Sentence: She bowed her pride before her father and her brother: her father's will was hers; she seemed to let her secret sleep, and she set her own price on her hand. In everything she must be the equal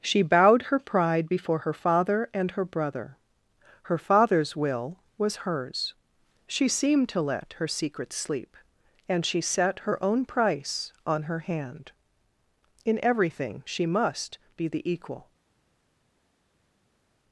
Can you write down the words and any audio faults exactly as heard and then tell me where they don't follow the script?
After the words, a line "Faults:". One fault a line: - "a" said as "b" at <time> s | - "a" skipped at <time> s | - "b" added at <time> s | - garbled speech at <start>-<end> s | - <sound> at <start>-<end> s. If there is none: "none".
She bowed her pride before her father and her brother: her father's will was hers; she seemed to let her secret sleep, and she set her own price on her hand. In everything she must be the equal
Faults:
none